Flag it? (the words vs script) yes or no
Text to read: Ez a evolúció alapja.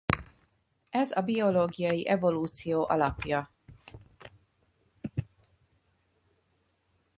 yes